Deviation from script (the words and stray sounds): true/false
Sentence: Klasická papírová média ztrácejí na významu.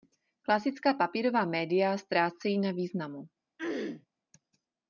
true